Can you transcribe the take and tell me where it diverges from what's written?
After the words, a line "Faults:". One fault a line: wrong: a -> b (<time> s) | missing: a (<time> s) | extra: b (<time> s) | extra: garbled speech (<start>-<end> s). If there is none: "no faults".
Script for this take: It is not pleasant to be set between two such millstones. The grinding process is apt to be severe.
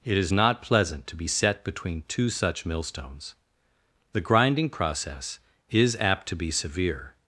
It is not pleasant to be set between two such millstones. The grinding process is apt to be severe.
Faults:
no faults